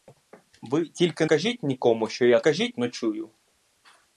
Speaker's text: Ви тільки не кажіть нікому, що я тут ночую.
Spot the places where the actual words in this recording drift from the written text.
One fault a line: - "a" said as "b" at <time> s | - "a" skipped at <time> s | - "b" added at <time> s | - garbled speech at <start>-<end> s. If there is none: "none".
- "не" skipped at 1.2 s
- "тут" said as "кажіть" at 2.4 s